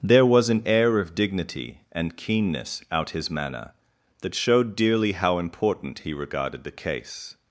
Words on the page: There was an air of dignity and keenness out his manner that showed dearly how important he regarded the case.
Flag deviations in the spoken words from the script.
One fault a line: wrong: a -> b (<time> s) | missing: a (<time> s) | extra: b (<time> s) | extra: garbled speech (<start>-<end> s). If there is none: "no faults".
no faults